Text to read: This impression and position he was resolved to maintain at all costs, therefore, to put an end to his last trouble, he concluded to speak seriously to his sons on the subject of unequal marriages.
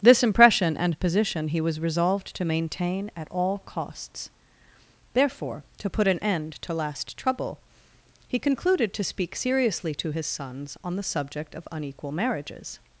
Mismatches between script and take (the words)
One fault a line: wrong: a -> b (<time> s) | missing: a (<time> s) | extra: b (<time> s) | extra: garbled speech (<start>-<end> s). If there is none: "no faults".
missing: his (6.7 s)